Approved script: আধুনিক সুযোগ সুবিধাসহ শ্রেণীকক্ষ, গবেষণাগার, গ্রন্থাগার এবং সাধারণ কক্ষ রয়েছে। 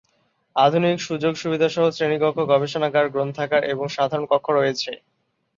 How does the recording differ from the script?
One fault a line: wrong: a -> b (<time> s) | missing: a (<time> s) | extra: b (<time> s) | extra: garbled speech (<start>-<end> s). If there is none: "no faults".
no faults